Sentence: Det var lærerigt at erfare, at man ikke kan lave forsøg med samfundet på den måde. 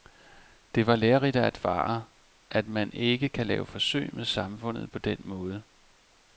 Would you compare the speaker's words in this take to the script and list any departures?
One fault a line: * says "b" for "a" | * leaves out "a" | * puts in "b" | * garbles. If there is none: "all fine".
all fine